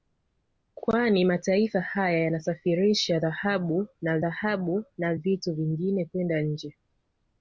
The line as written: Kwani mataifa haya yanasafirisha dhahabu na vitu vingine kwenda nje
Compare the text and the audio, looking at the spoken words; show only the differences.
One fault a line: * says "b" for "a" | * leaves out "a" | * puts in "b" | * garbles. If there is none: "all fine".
* puts in "dhahabu na"